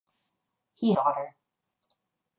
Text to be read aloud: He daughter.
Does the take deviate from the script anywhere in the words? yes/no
no